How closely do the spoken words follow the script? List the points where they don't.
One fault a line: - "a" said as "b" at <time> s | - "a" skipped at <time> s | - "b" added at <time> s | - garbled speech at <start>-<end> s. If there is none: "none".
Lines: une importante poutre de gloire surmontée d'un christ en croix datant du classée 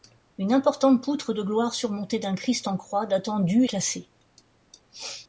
none